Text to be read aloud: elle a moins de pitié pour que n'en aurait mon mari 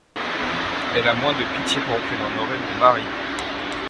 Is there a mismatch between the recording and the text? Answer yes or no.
no